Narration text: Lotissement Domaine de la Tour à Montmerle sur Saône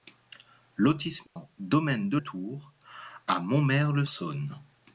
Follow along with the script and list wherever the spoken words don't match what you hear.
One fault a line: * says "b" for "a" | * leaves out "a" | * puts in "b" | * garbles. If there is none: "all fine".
* leaves out "la"
* leaves out "sur"